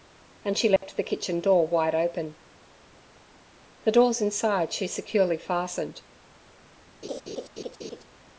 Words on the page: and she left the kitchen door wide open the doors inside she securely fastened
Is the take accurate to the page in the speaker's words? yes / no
yes